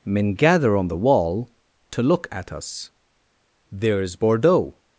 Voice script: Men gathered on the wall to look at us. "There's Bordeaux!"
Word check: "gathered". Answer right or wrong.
wrong